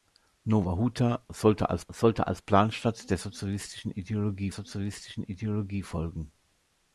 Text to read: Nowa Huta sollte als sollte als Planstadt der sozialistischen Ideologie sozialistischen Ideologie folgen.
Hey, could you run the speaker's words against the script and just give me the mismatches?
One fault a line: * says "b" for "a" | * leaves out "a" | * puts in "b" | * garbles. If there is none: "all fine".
all fine